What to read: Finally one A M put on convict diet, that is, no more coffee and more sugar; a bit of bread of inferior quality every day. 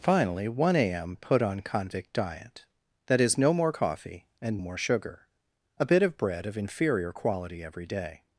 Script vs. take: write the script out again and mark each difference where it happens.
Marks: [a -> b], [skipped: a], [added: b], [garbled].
Finally one A M put on convict diet, that is, no more coffee and more sugar; a bit of bread of inferior quality every day.